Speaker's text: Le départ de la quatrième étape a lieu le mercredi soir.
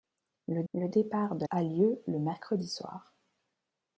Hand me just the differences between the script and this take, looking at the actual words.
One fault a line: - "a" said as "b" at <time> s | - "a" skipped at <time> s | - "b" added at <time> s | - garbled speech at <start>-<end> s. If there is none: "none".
- "le" added at 0.7 s
- "la quatrième étape" skipped at 1.5 s